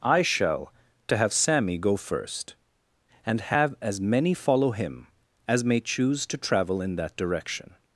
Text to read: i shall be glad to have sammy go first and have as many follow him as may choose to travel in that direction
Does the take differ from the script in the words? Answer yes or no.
yes